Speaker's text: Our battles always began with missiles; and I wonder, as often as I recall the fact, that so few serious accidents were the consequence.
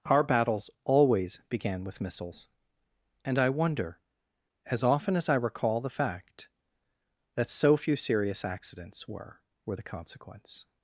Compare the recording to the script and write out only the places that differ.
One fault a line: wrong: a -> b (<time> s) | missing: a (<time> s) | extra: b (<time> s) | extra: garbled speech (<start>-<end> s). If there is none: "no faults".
extra: were (9.6 s)